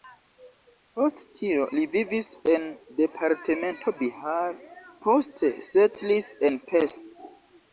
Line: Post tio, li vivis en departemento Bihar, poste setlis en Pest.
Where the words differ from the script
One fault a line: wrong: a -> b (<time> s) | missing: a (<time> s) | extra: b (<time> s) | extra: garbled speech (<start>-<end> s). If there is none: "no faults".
no faults